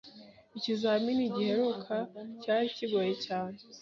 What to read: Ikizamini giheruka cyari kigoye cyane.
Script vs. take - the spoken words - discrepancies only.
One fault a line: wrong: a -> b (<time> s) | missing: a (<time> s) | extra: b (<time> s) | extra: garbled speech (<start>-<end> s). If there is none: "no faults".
no faults